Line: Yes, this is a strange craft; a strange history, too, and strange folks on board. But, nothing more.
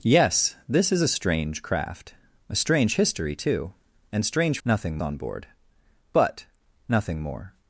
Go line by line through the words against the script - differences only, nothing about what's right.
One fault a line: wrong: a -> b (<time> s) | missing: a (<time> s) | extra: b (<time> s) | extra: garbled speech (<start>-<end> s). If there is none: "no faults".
wrong: folks -> nothing (4.7 s)